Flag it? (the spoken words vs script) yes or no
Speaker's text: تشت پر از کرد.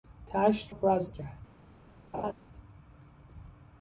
no